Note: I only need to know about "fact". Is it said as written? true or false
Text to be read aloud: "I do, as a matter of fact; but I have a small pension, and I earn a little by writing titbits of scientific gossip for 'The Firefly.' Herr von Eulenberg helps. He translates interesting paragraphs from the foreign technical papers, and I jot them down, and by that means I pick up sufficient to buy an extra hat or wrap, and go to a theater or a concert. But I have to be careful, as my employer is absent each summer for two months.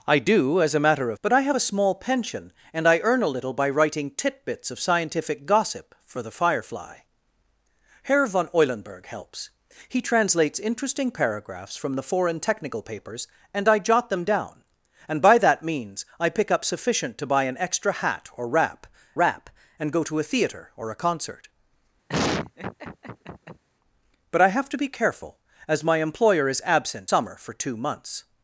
false